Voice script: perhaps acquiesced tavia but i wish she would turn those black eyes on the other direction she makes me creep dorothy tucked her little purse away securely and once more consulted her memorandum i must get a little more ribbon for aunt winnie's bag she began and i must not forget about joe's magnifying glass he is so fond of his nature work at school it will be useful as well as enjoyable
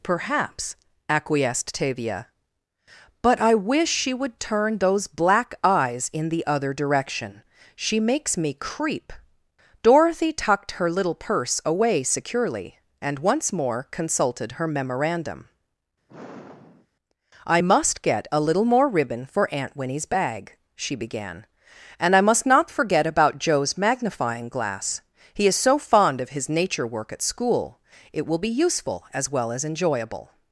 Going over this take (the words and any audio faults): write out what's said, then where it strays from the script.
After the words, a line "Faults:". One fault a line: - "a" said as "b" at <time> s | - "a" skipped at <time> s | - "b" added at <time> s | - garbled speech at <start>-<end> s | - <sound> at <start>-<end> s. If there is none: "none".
perhaps acquiesced tavia but i wish she would turn those black eyes in the other direction she makes me creep dorothy tucked her little purse away securely and once more consulted her memorandum i must get a little more ribbon for aunt winnie's bag she began and i must not forget about joe's magnifying glass he is so fond of his nature work at school it will be useful as well as enjoyable
Faults:
- "on" said as "in" at 6.1 s
- sigh at 16.1-16.9 s